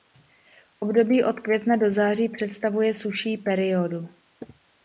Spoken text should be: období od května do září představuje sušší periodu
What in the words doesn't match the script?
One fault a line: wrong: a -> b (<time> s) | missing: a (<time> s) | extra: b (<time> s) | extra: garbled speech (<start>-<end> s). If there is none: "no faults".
no faults